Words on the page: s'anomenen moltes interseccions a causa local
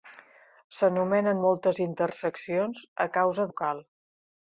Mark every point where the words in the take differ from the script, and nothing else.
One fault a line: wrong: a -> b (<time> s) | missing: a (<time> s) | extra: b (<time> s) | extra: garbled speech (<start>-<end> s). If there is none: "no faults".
no faults